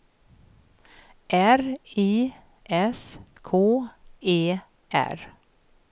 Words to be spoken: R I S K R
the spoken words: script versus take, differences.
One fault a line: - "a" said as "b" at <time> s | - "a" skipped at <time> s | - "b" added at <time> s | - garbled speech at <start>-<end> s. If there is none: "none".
- "E" added at 4.2 s